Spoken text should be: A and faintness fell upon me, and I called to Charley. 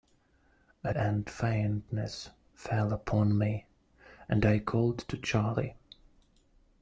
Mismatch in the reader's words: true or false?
false